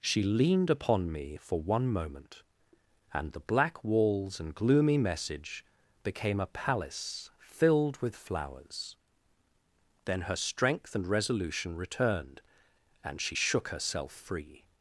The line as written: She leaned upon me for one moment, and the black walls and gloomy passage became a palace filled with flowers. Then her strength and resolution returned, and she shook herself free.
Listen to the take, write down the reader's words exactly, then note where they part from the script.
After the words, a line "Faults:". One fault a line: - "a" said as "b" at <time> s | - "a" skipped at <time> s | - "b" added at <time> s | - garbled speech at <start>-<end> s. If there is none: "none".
She leaned upon me for one moment, and the black walls and gloomy message became a palace filled with flowers. Then her strength and resolution returned, and she shook herself free.
Faults:
- "passage" said as "message" at 5.0 s